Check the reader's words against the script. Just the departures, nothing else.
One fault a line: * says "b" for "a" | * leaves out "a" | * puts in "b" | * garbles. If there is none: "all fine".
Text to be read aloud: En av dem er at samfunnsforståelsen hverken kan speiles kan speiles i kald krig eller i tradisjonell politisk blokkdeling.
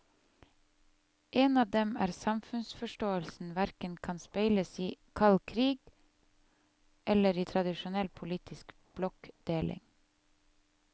* leaves out "kan speiles"